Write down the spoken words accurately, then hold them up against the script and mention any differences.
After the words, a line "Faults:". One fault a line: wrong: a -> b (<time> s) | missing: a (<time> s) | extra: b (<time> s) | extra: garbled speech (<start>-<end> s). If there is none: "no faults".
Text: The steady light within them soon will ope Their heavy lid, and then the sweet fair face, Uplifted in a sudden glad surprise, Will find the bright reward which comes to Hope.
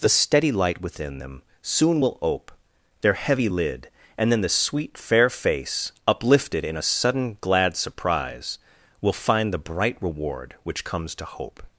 The steady light within them soon will ope Their heavy lid, and then the sweet fair face, Uplifted in a sudden glad surprise, Will find the bright reward which comes to Hope.
Faults:
no faults